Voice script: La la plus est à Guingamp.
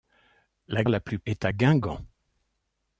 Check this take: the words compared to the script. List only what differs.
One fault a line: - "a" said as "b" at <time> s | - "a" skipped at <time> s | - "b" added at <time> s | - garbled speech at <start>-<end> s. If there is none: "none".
none